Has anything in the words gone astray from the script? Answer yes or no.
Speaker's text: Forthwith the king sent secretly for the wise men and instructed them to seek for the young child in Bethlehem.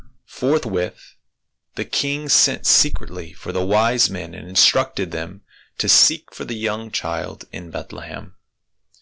no